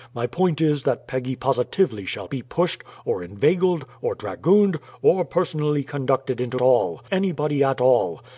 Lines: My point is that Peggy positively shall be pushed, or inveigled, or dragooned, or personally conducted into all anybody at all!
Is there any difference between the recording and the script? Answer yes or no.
no